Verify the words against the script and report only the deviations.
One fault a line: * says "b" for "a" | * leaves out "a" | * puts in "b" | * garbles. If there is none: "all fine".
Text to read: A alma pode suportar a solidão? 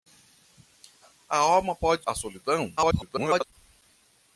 * leaves out "suportar"
* garbles